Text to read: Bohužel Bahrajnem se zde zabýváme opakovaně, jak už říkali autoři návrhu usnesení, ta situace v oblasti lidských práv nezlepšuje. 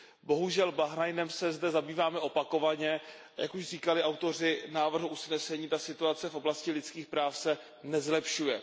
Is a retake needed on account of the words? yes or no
yes